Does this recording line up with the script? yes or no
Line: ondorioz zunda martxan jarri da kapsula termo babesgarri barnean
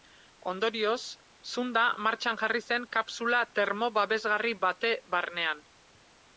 no